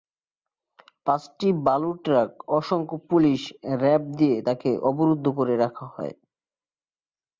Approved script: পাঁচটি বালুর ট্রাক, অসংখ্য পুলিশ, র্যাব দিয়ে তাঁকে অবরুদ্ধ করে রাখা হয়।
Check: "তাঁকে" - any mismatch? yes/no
no